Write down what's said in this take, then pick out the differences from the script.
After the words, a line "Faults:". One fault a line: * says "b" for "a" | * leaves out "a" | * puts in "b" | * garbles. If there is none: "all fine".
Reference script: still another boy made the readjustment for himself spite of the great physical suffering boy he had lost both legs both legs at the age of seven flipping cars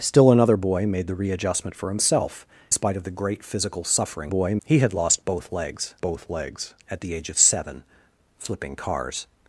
still another boy made the readjustment for himself spite of the great physical suffering boy he had lost both legs both legs at the age of seven flipping cars
Faults:
all fine